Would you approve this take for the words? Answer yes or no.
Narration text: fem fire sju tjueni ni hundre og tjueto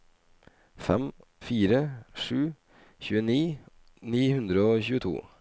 yes